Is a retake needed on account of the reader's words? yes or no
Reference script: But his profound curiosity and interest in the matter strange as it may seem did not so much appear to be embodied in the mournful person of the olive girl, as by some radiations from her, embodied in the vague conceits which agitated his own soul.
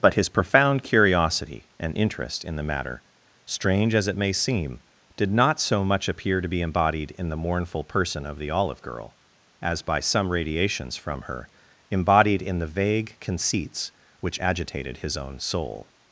no